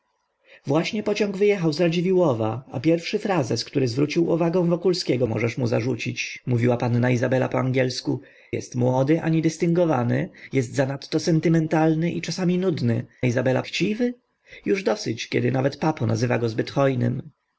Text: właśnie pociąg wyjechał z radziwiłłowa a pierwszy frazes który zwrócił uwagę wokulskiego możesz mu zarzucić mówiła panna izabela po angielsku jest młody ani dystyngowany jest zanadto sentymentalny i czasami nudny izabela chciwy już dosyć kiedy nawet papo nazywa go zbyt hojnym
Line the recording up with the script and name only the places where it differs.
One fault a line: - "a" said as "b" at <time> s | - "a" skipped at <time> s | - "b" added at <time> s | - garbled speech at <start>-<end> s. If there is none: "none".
none